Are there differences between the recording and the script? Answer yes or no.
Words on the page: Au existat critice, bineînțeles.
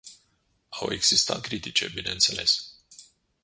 no